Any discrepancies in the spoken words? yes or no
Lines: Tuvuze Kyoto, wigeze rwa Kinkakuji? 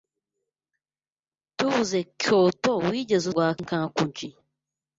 no